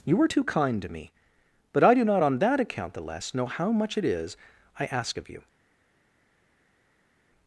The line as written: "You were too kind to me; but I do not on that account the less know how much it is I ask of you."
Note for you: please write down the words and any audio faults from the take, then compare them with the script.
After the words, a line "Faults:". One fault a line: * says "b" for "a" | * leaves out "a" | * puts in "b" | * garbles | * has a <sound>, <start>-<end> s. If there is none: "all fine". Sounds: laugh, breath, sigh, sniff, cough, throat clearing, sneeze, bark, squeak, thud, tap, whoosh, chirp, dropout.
"You were too kind to me; but I do not on that account the less know how much it is I ask of you."
Faults:
all fine